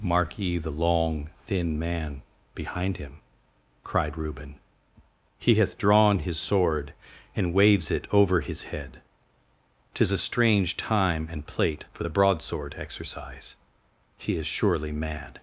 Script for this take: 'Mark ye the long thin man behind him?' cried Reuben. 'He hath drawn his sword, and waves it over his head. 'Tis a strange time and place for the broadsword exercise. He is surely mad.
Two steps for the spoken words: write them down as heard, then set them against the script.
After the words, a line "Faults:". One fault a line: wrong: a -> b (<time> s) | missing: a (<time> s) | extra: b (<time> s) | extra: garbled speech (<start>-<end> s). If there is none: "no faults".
'Mark ye the long thin man behind him?' cried Reuben. 'He hath drawn his sword, and waves it over his head. 'Tis a strange time and plate for the broadsword exercise. He is surely mad.
Faults:
wrong: place -> plate (11.4 s)